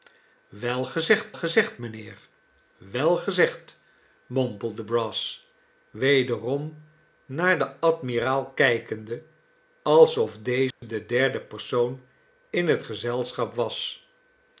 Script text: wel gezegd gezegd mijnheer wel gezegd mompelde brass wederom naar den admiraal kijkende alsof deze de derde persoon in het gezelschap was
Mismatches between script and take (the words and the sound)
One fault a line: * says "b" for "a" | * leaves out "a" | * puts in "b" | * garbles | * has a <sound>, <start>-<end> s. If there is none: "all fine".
* has a dropout, 10.7-10.8 s